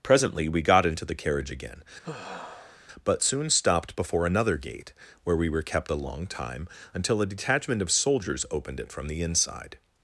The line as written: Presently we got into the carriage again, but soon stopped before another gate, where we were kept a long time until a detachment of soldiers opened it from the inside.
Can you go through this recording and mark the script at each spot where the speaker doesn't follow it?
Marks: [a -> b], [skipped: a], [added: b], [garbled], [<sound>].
Presently we got into the carriage again, [sigh] but soon stopped before another gate, where we were kept a long time until a detachment of soldiers opened it from the inside.